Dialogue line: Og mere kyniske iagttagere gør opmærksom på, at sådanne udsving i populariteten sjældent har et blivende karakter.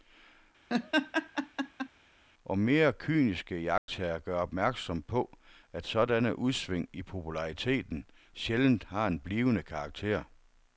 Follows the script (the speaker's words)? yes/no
no